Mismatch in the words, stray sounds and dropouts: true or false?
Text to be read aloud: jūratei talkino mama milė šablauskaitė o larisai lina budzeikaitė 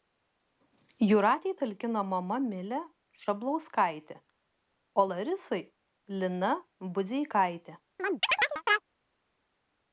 true